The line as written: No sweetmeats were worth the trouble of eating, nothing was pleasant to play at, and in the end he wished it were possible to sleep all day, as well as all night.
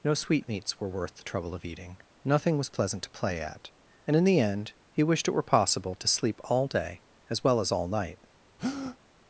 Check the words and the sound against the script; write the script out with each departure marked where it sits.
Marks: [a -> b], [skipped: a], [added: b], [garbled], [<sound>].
No sweetmeats were worth the trouble of eating, nothing was pleasant to play at, and in the end he wished it were possible to sleep all day, as well as all night. [breath]